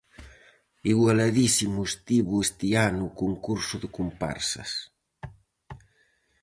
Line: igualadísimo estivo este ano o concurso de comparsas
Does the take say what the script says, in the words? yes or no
yes